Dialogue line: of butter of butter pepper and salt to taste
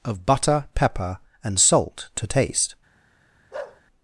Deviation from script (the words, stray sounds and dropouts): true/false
true